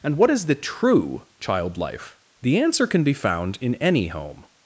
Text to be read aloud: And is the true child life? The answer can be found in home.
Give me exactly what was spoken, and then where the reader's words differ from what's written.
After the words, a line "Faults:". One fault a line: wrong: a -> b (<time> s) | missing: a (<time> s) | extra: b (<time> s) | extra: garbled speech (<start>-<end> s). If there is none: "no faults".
And what is the true child life? The answer can be found in any home.
Faults:
extra: what (0.2 s)
extra: any (3.8 s)